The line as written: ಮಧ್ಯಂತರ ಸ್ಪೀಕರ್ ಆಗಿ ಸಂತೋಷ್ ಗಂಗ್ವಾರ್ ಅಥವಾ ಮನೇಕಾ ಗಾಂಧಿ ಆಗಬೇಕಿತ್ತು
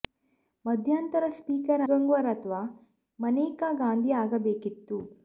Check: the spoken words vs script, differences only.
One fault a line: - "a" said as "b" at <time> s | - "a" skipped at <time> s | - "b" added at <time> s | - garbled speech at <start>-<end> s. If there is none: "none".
- "ಆಗಿ ಸಂತೋಷ್" skipped at 1.8 s